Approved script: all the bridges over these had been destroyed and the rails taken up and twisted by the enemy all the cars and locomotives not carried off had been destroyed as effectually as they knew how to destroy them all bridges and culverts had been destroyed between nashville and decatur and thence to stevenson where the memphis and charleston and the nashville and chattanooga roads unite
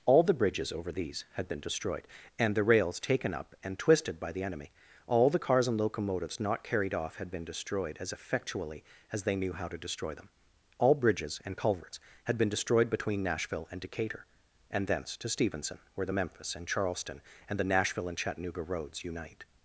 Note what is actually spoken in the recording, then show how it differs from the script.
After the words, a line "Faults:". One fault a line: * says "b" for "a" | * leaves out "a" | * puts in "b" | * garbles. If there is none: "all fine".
all the bridges over these had been destroyed and the rails taken up and twisted by the enemy all the cars and locomotives not carried off had been destroyed as effectually as they knew how to destroy them all bridges and culverts had been destroyed between nashville and decatur and thence to stevenson where the memphis and charleston and the nashville and chattanooga roads unite
Faults:
all fine